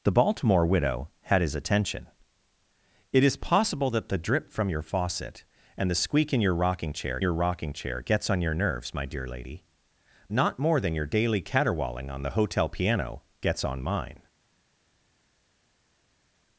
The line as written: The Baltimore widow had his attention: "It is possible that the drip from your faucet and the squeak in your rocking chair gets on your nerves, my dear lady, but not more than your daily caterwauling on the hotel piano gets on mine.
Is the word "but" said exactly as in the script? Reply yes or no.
no